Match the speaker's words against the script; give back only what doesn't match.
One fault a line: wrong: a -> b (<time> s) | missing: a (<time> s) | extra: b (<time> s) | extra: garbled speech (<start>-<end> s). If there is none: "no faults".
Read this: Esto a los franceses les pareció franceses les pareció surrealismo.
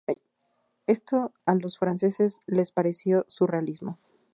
missing: franceses les pareció (3.2 s)